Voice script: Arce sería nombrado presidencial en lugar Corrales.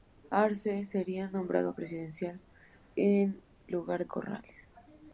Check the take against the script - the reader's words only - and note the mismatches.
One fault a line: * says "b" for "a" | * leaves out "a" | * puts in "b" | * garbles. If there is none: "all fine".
all fine